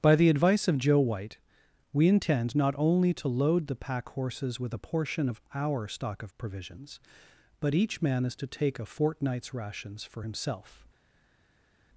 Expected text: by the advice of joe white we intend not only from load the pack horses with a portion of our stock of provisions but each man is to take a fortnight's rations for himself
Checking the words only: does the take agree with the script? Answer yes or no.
no